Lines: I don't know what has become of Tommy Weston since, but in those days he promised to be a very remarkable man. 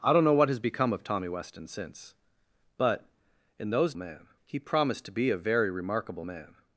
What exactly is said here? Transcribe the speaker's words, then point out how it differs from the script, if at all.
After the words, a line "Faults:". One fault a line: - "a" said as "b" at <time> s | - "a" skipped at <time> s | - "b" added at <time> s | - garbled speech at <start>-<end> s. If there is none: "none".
I don't know what has become of Tommy Weston since, but in those man he promised to be a very remarkable man.
Faults:
- "days" said as "man" at 4.0 s